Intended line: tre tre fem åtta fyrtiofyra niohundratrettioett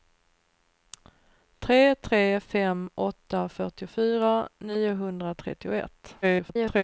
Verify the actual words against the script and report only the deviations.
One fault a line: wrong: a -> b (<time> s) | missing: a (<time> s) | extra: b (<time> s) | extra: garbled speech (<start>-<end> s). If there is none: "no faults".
extra: garbled speech (6.2-6.8 s)